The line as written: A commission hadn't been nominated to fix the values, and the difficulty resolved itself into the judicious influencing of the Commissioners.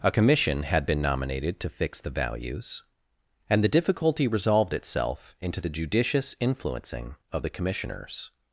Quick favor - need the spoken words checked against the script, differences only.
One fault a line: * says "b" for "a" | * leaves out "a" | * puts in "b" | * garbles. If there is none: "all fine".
* says "had" for "hadn't"